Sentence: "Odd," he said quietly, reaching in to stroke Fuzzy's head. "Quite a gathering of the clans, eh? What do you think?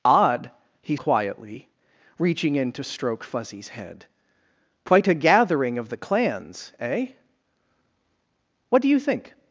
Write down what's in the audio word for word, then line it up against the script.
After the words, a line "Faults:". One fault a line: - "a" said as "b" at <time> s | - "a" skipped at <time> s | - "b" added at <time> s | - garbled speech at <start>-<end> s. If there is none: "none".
"Odd," he quietly, reaching in to stroke Fuzzy's head. "Quite a gathering of the clans, eh? What do you think?
Faults:
- "said" skipped at 1.0 s